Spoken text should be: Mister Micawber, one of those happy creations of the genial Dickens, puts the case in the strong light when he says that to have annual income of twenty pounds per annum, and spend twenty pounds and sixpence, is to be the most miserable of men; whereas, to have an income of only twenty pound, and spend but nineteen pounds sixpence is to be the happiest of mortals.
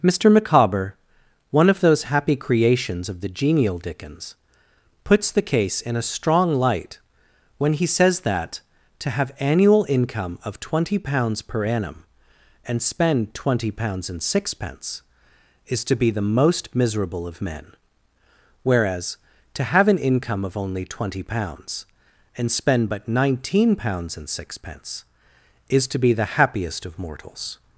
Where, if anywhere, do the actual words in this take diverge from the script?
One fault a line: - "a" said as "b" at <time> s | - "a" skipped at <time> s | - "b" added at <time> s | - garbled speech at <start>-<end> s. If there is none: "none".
- "the" said as "a" at 5.9 s
- "pound" said as "pounds" at 21.2 s
- "and" added at 24.1 s